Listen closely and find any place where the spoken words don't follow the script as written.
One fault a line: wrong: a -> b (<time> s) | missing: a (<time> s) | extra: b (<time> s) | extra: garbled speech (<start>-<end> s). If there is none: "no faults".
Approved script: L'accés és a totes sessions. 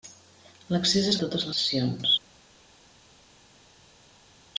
no faults